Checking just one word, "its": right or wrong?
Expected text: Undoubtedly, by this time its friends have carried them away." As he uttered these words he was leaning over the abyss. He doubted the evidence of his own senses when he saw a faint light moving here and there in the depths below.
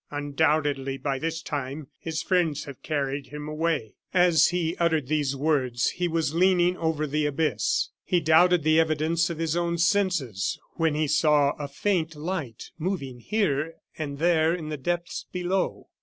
wrong